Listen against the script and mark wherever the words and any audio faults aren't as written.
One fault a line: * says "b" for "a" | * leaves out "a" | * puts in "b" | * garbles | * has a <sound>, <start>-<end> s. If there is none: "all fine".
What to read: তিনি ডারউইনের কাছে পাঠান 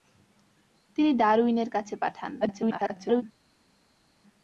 * garbles